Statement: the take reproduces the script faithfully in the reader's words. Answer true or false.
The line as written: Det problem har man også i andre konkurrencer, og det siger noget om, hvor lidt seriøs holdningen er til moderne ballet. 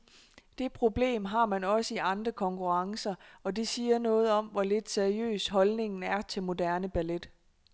true